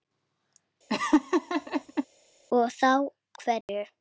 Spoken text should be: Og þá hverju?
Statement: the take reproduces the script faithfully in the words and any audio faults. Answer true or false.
false